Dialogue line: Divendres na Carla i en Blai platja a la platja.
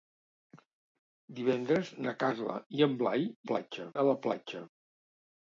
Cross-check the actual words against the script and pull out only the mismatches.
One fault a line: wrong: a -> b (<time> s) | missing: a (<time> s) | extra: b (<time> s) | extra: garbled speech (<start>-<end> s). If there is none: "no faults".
no faults